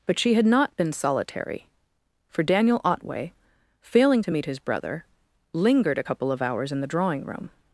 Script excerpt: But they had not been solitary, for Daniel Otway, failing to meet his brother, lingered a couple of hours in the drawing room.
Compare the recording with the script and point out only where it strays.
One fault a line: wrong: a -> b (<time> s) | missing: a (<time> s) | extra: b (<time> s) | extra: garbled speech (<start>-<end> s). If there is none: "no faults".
wrong: they -> she (0.2 s)